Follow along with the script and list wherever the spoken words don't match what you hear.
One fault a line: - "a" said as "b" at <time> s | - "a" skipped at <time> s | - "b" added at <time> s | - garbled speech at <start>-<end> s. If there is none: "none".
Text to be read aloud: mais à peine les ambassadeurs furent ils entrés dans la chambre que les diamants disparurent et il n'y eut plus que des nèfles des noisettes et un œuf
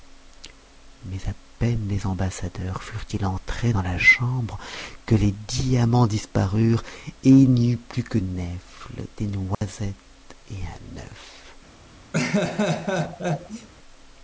- "des" skipped at 8.2 s